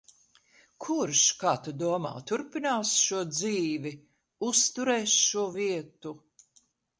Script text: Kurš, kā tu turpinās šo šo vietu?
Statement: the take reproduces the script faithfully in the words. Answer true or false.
false